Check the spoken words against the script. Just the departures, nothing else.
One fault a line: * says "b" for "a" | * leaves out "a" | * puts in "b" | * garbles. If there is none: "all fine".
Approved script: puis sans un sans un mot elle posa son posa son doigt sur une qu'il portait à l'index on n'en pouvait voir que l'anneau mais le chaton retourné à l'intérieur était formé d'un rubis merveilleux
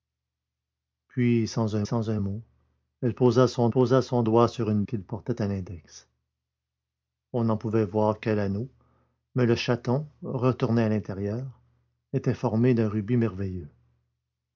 all fine